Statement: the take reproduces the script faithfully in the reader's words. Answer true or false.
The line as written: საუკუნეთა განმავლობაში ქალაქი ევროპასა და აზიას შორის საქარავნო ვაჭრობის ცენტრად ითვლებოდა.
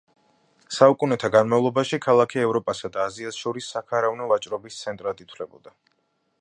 true